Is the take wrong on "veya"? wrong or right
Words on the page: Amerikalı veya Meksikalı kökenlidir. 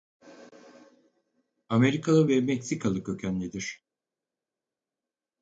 wrong